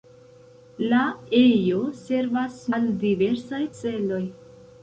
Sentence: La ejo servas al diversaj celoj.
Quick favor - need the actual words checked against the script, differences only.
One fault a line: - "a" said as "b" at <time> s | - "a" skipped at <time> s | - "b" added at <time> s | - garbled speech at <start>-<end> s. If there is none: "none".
none